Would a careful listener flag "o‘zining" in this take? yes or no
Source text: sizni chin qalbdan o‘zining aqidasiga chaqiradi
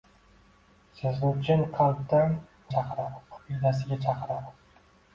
yes